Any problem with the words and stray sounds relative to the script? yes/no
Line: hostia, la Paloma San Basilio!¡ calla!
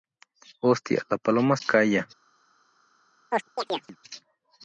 yes